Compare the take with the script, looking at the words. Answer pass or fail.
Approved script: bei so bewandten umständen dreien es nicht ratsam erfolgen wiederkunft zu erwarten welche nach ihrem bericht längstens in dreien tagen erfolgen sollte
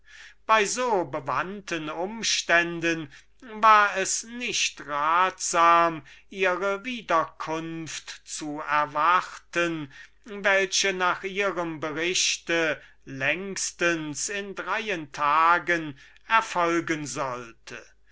fail